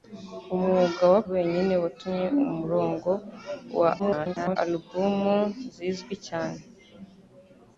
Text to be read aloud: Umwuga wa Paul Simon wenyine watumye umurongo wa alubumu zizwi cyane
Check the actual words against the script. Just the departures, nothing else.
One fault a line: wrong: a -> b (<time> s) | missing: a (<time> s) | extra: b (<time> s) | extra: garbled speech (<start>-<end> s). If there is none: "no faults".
missing: Paul Simon (1.2 s)
extra: garbled speech (4.0-4.6 s)